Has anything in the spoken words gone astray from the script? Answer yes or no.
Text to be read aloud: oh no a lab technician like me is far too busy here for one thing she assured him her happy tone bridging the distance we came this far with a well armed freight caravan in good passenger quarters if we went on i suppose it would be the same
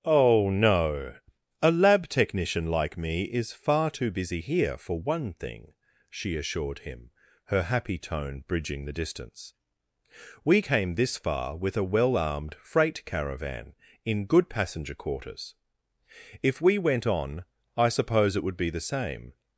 no